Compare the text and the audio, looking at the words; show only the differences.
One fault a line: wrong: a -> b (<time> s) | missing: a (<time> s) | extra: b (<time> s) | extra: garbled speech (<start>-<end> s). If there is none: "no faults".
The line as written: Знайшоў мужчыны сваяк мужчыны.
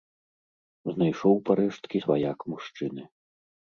wrong: мужчыны -> парэшткі (1.5 s)